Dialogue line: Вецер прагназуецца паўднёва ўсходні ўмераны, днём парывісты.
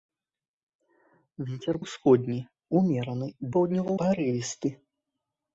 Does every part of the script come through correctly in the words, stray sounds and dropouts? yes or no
no